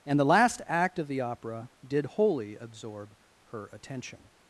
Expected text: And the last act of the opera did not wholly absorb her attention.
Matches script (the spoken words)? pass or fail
fail